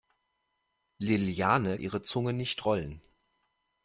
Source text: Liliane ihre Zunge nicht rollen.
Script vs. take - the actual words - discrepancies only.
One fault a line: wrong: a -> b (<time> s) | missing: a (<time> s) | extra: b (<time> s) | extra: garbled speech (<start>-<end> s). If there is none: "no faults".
no faults